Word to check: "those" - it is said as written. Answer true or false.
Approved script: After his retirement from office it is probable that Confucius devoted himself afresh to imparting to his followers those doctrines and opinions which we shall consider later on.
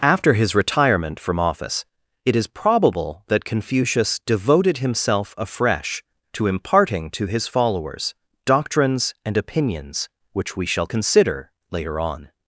false